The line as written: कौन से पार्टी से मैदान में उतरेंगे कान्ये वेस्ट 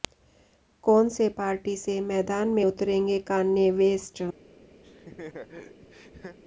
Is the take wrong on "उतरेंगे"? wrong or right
right